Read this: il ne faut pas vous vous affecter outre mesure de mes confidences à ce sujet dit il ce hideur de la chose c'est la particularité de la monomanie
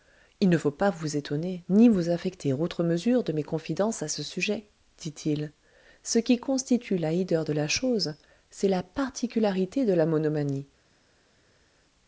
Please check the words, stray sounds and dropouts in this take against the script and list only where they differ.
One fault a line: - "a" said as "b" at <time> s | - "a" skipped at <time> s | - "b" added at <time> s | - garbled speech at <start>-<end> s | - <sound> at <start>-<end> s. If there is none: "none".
- "étonner ni" added at 1.2 s
- "qui constitue la" added at 6.2 s